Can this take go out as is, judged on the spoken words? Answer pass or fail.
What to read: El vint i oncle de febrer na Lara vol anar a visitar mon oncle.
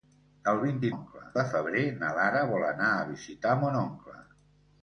pass